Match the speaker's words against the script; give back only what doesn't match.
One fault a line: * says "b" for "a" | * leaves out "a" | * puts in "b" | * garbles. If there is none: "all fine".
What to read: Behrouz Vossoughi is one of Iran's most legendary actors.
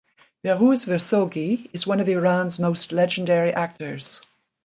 all fine